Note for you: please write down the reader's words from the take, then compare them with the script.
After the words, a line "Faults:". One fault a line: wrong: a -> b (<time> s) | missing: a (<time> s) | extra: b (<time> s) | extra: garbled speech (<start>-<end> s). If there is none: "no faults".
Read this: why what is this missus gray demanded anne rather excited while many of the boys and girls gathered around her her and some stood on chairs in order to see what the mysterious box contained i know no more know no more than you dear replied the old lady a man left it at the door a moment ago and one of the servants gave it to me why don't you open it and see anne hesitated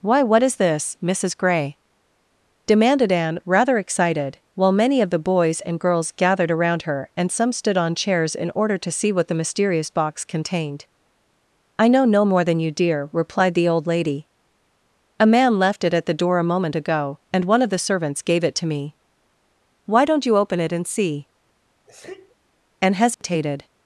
why what is this missus gray demanded anne rather excited while many of the boys and girls gathered around her and some stood on chairs in order to see what the mysterious box contained i know no more than you dear replied the old lady a man left it at the door a moment ago and one of the servants gave it to me why don't you open it and see anne hesitated
Faults:
missing: her (7.1 s)
missing: know no more (12.4 s)